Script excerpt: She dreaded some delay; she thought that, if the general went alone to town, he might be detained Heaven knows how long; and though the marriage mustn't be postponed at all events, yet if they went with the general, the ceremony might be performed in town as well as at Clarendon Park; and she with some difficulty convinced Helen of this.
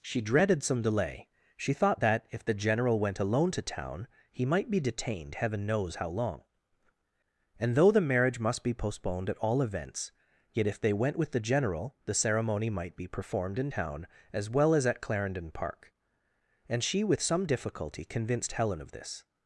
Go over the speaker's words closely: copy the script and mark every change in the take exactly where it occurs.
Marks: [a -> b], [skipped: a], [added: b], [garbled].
She dreaded some delay; she thought that, if the general went alone to town, he might be detained Heaven knows how long; and though the marriage [mustn't -> must] be postponed at all events, yet if they went with the general, the ceremony might be performed in town as well as at Clarendon Park; and she with some difficulty convinced Helen of this.